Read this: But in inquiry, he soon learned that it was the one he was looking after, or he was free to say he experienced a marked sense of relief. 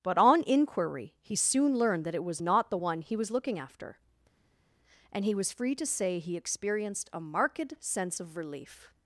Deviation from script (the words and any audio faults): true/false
true